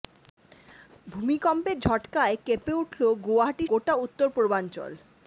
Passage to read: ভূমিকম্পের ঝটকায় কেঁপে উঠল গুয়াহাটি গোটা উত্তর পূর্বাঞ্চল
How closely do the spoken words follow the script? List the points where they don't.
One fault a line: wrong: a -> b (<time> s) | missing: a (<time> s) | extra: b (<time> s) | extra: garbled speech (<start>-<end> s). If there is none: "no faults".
no faults